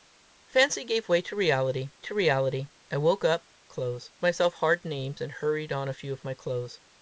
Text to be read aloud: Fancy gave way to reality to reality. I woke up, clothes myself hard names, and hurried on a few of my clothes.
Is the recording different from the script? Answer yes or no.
no